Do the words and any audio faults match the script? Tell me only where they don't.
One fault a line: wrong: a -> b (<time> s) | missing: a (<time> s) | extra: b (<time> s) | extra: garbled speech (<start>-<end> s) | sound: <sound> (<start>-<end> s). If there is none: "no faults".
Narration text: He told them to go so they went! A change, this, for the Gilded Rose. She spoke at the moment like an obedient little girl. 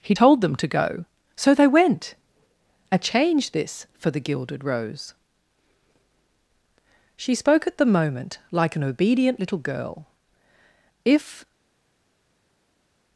extra: If (11.0 s)